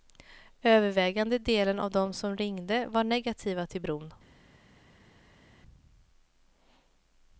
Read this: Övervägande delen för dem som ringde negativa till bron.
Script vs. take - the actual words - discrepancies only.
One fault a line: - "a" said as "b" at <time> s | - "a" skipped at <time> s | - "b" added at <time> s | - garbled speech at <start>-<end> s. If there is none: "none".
- "för" said as "av" at 1.8 s
- "var" added at 2.9 s